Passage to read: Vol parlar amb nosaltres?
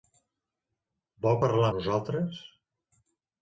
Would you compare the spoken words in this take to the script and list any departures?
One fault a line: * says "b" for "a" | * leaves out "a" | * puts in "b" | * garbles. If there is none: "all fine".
* leaves out "amb"